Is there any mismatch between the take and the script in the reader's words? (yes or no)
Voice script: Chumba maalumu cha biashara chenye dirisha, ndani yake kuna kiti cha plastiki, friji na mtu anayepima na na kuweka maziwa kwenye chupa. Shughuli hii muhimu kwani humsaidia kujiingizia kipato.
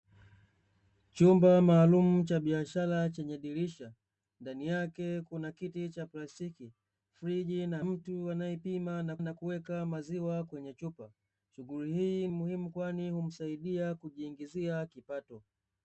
no